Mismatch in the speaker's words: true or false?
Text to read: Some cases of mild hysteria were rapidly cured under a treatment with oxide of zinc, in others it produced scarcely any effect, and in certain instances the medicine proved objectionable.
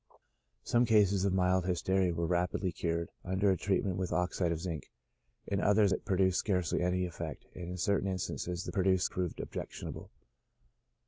true